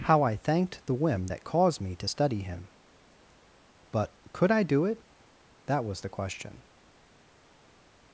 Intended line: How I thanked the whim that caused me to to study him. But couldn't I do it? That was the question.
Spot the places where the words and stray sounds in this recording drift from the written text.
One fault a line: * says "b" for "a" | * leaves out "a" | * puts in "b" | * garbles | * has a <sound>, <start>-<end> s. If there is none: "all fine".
* leaves out "to"
* says "could" for "couldn't"